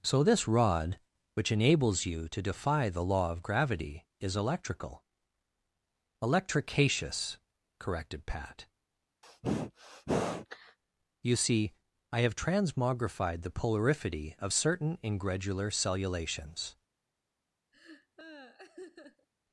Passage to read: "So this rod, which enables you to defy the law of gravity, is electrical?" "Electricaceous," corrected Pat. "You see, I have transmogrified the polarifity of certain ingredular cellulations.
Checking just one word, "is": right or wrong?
right